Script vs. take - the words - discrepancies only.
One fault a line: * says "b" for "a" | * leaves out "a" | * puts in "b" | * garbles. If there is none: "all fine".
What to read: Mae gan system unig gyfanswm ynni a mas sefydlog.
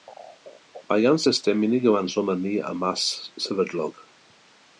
all fine